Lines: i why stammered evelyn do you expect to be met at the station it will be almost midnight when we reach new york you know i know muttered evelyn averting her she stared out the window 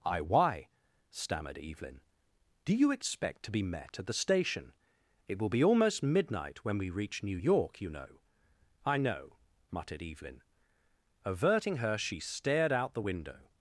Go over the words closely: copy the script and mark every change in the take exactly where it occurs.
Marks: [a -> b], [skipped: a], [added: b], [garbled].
i why stammered evelyn do you expect to be met at the station it will be almost midnight when we reach new york you know i know muttered evelyn averting her she stared out the window